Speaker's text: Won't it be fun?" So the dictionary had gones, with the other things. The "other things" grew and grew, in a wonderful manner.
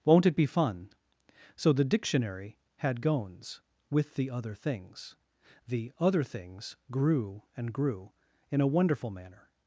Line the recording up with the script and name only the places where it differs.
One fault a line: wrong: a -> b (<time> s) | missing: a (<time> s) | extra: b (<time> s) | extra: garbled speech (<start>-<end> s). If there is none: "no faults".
no faults